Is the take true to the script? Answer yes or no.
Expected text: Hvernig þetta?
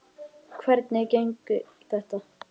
yes